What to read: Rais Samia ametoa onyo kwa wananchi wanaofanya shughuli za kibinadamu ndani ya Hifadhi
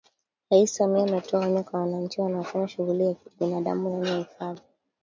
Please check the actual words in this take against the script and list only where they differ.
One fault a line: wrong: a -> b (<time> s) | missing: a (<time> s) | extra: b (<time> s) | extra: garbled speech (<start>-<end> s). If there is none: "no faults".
no faults